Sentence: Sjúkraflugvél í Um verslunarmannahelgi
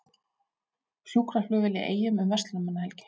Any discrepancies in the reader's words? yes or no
yes